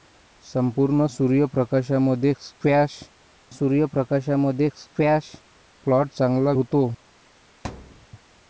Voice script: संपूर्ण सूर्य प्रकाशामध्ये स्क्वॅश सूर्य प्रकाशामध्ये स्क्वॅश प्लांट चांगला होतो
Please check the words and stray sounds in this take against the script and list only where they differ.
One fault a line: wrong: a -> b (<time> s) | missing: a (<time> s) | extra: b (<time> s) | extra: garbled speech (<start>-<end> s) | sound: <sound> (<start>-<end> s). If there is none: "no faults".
sound: thud (7.6-8.1 s)